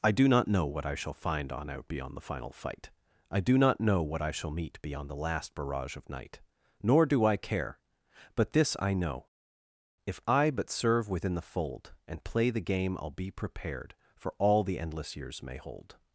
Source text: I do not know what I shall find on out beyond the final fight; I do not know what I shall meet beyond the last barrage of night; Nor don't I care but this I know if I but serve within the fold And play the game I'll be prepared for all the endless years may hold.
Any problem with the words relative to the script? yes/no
yes